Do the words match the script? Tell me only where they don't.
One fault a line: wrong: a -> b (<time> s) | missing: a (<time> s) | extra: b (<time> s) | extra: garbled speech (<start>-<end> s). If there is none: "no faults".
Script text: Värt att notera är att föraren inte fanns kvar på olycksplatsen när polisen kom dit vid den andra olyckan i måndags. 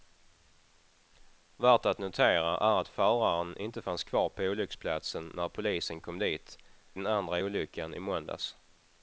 missing: vid (6.6 s)